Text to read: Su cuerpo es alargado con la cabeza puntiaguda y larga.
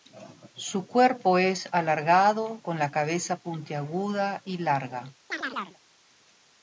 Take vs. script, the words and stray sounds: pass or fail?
fail